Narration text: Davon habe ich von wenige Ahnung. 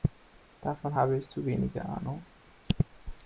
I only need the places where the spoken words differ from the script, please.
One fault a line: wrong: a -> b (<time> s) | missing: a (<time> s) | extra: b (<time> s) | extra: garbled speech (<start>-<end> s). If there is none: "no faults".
wrong: von -> zu (1.2 s)